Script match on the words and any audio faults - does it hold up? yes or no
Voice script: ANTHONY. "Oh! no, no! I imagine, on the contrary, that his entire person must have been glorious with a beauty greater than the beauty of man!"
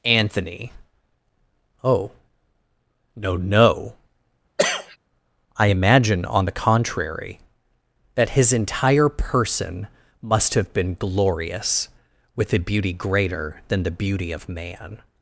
no